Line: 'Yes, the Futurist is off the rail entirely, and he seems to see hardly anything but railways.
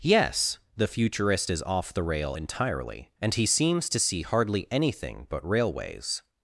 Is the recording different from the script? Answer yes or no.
no